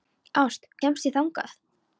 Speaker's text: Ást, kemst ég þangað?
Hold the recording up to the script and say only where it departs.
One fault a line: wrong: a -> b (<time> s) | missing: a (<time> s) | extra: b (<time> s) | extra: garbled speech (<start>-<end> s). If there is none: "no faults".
no faults